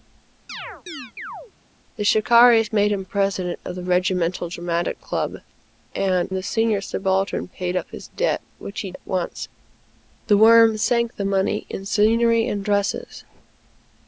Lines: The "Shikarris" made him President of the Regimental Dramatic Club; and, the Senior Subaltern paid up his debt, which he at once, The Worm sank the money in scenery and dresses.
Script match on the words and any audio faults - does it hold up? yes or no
no